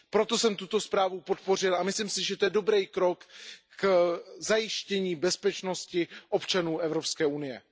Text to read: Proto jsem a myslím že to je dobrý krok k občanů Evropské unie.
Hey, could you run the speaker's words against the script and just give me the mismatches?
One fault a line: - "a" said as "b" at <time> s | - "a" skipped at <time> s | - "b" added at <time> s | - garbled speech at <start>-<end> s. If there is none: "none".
- "tuto zprávu podpořil" added at 0.6 s
- "si" added at 2.1 s
- "zajištění bezpečnosti" added at 4.4 s